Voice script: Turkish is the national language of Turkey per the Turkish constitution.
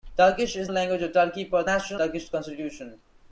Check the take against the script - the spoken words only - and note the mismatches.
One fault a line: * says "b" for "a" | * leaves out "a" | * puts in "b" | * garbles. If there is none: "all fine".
* leaves out "the national"
* says "national" for "the"